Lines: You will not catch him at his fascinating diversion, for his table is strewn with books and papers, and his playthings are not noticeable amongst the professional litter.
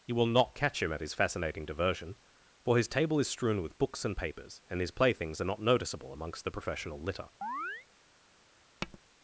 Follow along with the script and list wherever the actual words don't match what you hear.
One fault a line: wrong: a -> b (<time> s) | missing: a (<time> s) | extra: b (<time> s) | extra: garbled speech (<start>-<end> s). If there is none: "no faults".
no faults